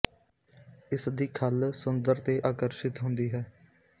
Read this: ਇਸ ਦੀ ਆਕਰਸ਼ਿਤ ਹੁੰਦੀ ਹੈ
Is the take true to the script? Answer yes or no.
no